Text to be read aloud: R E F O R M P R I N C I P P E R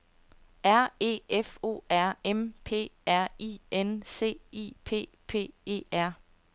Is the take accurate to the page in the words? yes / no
yes